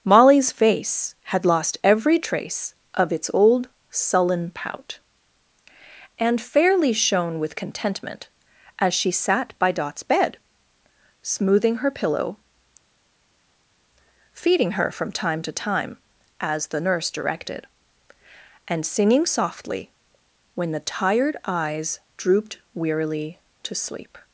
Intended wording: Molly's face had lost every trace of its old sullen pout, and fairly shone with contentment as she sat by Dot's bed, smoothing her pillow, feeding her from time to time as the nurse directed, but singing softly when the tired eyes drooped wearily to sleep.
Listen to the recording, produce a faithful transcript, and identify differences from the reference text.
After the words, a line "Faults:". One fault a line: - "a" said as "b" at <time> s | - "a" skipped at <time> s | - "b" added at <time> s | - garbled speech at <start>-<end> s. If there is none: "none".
Molly's face had lost every trace of its old sullen pout, and fairly shone with contentment as she sat by Dot's bed, smoothing her pillow, feeding her from time to time as the nurse directed, and singing softly when the tired eyes drooped wearily to sleep.
Faults:
- "but" said as "and" at 18.7 s